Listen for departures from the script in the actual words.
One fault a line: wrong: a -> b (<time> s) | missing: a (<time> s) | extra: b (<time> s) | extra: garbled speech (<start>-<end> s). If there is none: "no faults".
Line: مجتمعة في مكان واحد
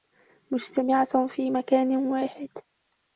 no faults